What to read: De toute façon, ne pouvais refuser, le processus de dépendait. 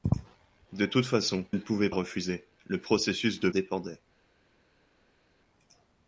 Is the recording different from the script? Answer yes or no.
no